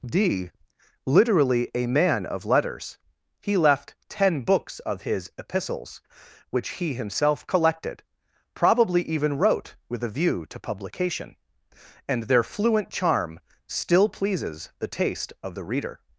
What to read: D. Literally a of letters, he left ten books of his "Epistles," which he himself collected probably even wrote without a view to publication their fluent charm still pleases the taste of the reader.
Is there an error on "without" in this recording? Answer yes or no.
yes